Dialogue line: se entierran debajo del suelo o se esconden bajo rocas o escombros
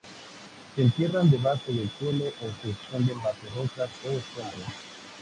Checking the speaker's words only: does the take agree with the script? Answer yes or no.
yes